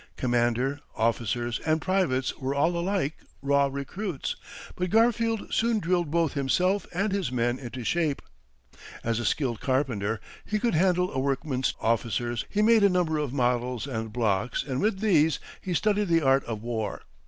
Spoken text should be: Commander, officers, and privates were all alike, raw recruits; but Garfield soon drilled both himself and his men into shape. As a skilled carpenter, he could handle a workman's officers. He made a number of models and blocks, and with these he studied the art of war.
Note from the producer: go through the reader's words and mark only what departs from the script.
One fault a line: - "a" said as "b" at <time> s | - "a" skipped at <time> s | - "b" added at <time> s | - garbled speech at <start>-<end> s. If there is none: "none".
none